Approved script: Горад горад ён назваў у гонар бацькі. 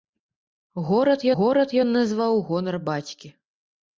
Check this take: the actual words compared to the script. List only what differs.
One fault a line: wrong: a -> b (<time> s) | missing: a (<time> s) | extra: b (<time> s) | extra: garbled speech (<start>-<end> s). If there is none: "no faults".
no faults